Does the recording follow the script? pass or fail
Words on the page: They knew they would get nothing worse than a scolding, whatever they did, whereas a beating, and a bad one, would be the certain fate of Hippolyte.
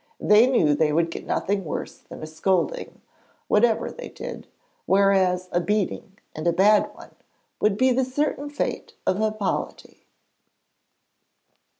pass